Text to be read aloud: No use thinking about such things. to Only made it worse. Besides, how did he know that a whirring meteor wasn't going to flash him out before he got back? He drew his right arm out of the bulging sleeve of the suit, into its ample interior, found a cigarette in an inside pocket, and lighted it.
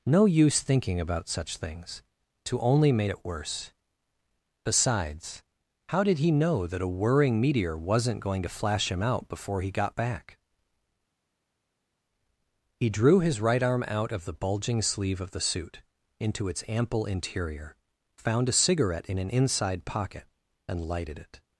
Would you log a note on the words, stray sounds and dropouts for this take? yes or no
no